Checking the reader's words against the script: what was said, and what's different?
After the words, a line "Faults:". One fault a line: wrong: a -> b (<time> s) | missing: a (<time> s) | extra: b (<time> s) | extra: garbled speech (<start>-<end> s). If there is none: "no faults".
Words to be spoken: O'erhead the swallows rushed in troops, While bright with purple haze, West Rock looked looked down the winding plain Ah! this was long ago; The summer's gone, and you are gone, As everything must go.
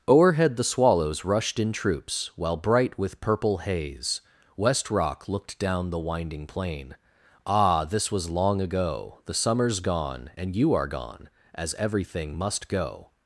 O'erhead the swallows rushed in troops, While bright with purple haze, West Rock looked down the winding plain Ah! this was long ago; The summer's gone, and you are gone, As everything must go.
Faults:
missing: looked (5.6 s)